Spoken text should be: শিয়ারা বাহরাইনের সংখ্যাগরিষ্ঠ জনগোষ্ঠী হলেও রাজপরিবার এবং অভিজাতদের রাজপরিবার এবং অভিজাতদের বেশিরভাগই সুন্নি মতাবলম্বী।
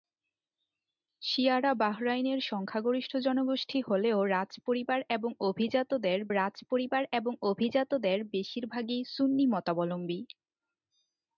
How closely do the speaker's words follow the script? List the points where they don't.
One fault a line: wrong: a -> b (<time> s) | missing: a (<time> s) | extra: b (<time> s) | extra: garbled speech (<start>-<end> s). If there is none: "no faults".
no faults